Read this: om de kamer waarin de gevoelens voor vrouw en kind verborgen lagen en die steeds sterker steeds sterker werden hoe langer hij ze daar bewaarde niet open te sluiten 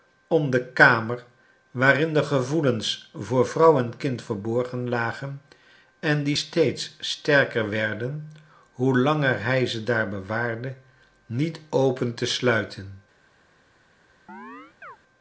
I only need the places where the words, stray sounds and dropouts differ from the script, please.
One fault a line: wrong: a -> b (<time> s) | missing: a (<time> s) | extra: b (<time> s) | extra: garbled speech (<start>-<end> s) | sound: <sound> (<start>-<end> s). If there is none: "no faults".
missing: steeds sterker (7.7 s)
sound: chirp (14.3-15.0 s)